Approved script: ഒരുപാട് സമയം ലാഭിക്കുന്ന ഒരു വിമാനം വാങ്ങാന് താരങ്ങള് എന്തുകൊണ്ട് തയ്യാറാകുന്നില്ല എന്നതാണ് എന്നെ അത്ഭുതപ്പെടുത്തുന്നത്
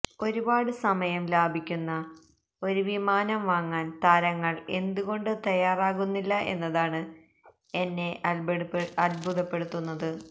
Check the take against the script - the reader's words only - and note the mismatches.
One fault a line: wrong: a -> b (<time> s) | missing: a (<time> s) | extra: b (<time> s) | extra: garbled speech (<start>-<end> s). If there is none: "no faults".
no faults